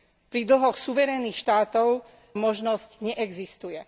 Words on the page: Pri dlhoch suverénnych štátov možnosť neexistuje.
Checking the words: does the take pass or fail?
pass